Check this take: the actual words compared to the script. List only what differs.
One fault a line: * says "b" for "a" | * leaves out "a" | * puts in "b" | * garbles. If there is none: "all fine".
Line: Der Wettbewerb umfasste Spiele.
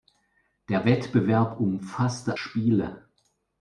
all fine